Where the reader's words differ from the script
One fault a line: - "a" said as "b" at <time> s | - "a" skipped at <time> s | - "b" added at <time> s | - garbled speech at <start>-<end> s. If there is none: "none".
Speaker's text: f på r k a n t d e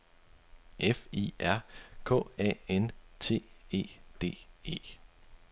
- "på" said as "i" at 1.1 s
- "e" added at 3.7 s